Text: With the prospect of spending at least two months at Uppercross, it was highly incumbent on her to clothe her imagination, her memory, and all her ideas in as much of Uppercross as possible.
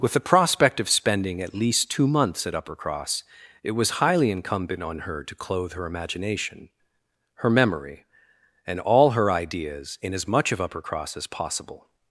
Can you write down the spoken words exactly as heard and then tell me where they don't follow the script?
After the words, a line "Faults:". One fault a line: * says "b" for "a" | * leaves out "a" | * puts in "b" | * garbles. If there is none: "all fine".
With the prospect of spending at least two months at Uppercross, it was highly incumbent on her to clothe her imagination, her memory, and all her ideas in as much of Uppercross as possible.
Faults:
all fine